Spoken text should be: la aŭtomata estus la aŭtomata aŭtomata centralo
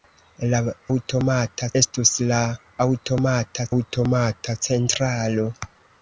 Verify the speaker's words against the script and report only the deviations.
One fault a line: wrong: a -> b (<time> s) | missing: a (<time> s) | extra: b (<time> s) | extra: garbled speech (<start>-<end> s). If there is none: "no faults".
no faults